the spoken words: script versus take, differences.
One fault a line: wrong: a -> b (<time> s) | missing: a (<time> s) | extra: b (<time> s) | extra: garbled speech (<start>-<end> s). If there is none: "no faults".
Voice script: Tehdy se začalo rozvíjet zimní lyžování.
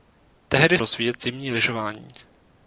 missing: se začalo (0.8 s)